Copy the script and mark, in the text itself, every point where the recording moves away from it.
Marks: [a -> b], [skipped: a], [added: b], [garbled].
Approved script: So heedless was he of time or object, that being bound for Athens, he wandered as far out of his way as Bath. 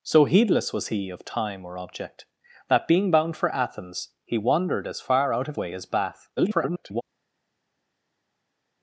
So heedless was he of time or object, that being bound for Athens, he wandered as far out of [skipped: his] way as Bath. [garbled]